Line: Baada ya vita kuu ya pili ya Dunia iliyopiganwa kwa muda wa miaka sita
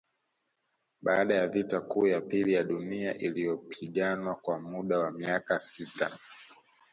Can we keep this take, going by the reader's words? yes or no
yes